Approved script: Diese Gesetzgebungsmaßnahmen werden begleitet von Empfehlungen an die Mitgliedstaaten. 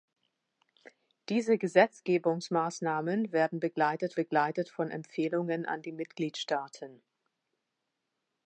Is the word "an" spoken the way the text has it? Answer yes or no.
yes